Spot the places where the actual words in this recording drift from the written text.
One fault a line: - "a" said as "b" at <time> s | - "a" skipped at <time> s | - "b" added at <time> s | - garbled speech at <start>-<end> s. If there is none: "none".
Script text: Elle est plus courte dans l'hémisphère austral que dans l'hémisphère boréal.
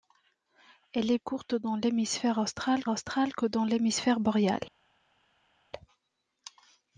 - "plus" skipped at 1.2 s
- "austral" added at 2.9 s